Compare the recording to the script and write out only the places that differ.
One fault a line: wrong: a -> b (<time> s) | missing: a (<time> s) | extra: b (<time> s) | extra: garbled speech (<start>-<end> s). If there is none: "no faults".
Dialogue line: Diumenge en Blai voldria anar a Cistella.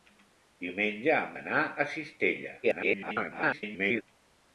missing: Blai voldria (1.4 s)
extra: garbled speech (2.6-4.0 s)